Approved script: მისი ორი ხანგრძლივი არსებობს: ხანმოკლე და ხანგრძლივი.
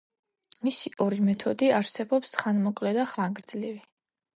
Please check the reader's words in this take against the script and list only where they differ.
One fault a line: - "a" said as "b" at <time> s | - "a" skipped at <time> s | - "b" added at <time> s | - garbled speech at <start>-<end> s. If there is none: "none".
- "ხანგრძლივი" said as "მეთოდი" at 1.3 s